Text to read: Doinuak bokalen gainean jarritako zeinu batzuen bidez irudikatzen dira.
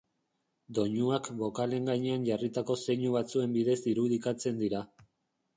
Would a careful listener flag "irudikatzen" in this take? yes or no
no